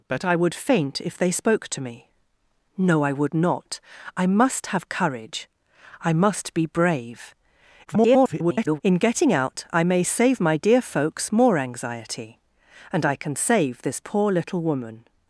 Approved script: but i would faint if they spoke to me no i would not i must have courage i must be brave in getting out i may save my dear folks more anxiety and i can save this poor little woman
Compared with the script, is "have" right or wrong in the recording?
right